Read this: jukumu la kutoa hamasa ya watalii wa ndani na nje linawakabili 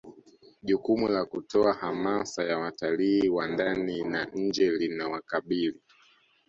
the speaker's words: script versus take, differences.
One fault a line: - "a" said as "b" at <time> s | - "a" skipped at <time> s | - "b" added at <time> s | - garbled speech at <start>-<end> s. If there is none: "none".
none